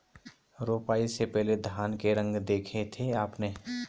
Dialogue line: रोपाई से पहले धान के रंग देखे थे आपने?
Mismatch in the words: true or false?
false